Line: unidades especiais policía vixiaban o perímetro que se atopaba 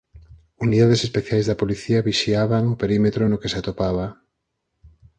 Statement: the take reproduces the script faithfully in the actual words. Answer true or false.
false